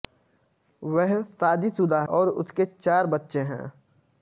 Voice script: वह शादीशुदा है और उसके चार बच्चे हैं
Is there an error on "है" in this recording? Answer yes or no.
yes